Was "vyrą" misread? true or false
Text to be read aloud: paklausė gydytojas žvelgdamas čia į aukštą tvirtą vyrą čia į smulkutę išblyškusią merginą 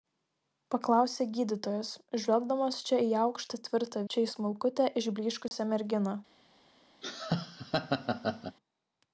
true